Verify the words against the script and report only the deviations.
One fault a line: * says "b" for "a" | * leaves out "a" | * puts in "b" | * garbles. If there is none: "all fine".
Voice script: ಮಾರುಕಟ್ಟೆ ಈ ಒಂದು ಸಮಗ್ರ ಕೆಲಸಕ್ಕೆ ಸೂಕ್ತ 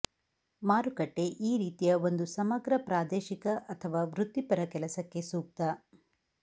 * puts in "ರೀತಿಯ"
* puts in "ಪ್ರಾದೇಶಿಕ ಅಥವಾ ವೃತ್ತಿಪರ"